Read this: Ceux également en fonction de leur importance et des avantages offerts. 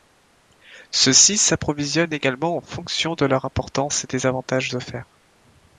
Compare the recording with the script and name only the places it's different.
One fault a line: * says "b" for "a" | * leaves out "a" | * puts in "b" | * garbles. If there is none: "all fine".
* puts in "ci s'approvisionnent"